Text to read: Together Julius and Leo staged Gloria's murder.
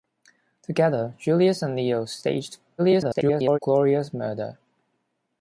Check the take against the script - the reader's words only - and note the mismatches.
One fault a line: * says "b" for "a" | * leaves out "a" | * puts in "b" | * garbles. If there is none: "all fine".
* garbles